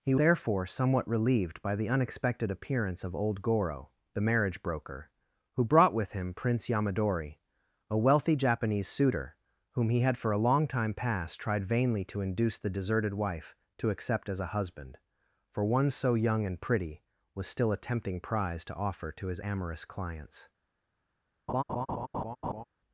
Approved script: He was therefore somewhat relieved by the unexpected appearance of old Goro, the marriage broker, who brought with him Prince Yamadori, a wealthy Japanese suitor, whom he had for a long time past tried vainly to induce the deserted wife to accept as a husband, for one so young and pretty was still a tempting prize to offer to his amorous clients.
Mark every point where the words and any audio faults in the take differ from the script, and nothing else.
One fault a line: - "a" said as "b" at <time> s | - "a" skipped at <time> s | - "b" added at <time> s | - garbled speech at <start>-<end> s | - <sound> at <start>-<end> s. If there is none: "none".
- "was" skipped at 0.1 s
- laugh at 21.5-22.6 s